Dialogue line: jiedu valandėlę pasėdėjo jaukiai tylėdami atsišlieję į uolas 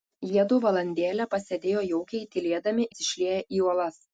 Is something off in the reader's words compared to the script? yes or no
no